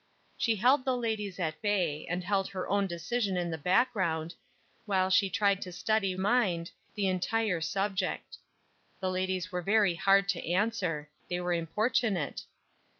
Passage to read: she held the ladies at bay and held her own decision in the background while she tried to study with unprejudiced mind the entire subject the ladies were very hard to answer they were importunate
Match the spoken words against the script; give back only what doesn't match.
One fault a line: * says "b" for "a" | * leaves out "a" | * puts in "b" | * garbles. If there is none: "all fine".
* leaves out "with unprejudiced"